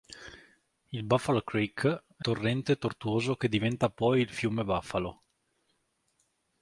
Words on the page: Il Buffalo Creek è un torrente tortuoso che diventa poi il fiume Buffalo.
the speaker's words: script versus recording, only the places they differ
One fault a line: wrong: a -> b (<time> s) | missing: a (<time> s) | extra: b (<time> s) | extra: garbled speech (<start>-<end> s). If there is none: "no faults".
missing: un (2.2 s)